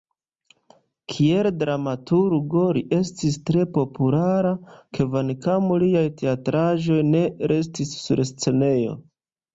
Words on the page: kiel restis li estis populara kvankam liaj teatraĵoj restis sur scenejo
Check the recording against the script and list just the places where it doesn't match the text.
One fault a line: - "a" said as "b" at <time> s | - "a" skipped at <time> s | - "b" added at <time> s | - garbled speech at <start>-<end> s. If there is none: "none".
- "restis" said as "dramaturgo" at 1.6 s
- "tre" added at 3.5 s
- "ne" added at 7.1 s